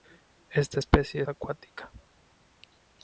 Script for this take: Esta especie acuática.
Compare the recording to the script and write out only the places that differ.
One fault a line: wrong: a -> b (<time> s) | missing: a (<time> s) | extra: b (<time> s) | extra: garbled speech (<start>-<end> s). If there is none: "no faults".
no faults